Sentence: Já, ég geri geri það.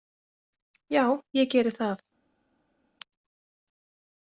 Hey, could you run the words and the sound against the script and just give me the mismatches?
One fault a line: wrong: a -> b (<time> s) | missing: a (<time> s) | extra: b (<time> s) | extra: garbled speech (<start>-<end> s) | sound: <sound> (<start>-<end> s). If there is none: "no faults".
missing: geri (1.7 s)